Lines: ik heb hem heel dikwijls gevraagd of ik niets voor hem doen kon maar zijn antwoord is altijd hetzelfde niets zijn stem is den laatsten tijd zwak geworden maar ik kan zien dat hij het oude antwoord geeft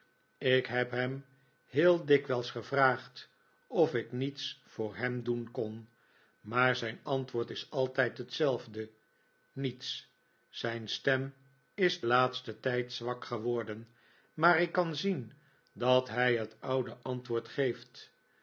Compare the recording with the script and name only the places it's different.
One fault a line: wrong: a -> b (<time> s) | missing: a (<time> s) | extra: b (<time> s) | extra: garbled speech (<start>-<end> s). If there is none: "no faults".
missing: den (12.0 s)